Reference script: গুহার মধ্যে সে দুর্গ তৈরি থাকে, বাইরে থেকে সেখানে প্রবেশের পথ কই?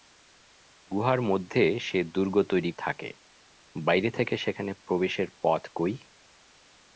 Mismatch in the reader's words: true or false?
false